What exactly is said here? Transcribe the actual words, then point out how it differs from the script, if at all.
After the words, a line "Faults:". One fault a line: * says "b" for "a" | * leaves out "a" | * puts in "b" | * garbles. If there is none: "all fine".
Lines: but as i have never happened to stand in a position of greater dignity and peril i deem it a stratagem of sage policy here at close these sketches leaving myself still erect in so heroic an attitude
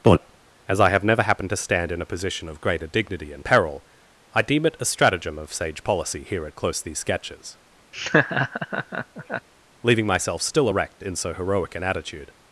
but as i have never happened to stand in a position of greater dignity and peril i deem it a stratagem of sage policy here at close these sketches leaving myself still erect in so heroic an attitude
Faults:
all fine